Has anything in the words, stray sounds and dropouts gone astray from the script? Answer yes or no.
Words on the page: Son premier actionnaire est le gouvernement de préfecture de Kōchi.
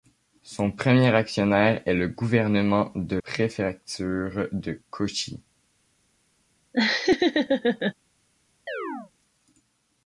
yes